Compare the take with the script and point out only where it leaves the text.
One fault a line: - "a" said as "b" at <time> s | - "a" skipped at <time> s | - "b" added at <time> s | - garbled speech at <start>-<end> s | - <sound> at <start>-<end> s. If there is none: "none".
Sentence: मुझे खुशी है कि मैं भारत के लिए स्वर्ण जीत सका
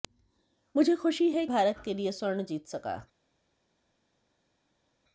- "कि मैं" skipped at 1.4 s